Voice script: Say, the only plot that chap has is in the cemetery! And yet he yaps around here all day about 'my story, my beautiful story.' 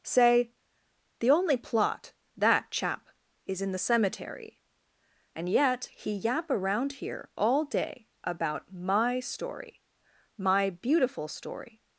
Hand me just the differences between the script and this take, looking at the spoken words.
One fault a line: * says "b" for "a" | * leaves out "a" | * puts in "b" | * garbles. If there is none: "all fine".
* leaves out "has"
* says "yap" for "yaps"